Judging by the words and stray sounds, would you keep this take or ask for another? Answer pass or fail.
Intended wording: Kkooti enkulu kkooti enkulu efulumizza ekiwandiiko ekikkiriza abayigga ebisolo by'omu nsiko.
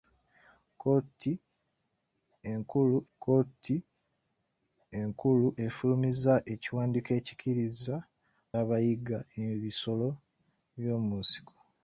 pass